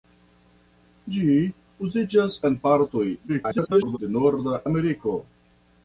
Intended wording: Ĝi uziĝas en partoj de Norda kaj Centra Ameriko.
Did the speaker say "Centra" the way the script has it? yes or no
no